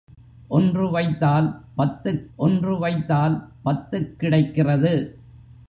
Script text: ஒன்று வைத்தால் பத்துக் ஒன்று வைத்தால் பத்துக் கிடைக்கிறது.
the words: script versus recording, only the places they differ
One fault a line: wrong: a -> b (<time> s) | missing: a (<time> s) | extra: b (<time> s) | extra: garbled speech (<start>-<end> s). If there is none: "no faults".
no faults